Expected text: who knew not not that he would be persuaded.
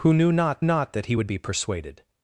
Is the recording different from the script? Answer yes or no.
no